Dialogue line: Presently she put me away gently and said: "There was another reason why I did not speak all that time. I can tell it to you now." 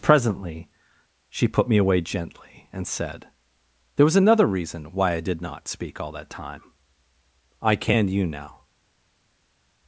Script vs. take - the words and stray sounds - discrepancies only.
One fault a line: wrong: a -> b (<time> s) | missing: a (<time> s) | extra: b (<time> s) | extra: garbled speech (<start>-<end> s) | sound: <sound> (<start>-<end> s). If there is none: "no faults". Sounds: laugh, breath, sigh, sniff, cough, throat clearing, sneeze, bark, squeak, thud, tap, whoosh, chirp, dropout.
missing: tell it to (8.1 s)